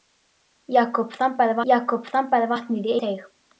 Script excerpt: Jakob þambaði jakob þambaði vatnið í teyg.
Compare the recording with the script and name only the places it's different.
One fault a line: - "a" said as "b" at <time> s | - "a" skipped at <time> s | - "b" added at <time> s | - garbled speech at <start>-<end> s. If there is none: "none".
none